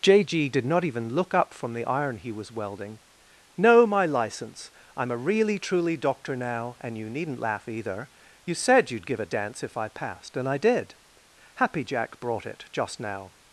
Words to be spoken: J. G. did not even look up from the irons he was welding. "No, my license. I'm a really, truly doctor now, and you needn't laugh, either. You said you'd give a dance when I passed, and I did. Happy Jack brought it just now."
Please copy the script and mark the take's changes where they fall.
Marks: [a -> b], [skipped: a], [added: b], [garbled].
J. G. did not even look up from the [irons -> iron] he was welding. "No, my license. I'm a really, truly doctor now, and you needn't laugh, either. You said you'd give a dance [when -> if] I passed, and I did. Happy Jack brought it just now."